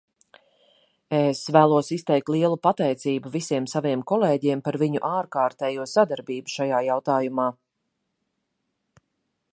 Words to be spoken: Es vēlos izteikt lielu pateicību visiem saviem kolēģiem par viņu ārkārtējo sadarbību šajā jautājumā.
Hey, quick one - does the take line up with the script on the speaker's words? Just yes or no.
yes